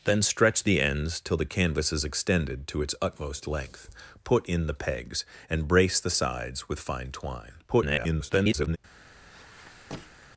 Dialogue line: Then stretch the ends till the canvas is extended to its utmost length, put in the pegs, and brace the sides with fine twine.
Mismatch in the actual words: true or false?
true